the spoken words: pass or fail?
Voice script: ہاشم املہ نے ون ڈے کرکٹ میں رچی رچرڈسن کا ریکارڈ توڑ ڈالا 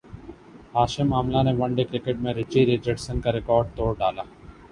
pass